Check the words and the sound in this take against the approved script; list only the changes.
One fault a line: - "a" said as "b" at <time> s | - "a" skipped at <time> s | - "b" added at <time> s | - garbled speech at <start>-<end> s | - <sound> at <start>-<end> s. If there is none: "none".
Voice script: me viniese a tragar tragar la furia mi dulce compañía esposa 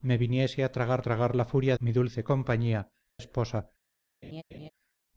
- laugh at 4.2-4.7 s